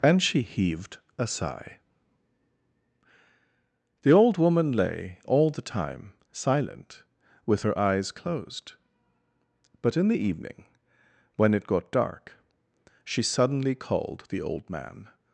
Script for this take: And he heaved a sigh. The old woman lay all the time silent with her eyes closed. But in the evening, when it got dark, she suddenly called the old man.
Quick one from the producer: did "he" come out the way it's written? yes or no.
no